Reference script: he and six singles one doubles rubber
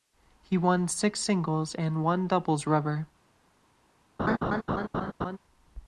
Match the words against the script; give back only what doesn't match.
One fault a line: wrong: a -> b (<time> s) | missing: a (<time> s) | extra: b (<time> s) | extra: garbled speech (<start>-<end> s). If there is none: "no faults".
wrong: and -> won (0.6 s)
extra: and (1.7 s)